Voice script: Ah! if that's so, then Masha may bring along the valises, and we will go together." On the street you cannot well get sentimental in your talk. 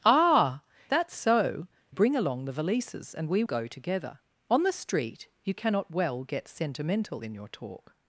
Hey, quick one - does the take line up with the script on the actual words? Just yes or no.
no